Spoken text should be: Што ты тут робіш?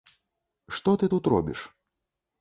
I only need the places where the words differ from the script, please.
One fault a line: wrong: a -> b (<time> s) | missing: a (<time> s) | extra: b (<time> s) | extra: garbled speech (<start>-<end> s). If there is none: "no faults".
no faults